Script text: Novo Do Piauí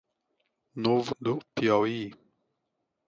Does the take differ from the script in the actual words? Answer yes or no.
no